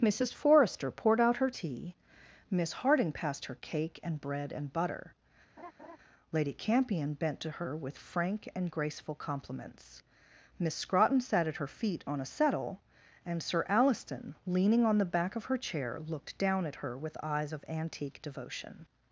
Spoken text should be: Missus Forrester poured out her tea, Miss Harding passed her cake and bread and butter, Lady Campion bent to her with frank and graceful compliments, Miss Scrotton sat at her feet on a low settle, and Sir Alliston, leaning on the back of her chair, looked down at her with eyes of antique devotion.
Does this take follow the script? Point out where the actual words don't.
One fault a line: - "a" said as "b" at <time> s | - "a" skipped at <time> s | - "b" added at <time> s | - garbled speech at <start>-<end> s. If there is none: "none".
- "low" skipped at 12.2 s